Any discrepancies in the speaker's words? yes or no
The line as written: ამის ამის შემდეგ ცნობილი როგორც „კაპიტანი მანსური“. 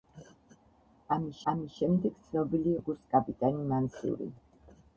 no